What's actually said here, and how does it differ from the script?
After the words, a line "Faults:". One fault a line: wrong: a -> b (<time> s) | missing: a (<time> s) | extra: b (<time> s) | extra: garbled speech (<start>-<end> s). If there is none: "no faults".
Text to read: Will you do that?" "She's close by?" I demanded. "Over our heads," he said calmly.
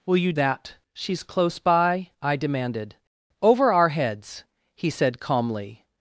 Will you that?" "She's close by?" I demanded. "Over our heads," he said calmly.
Faults:
missing: do (0.3 s)